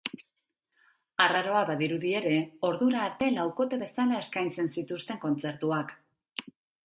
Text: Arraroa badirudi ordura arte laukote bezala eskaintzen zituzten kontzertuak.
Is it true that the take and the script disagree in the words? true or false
true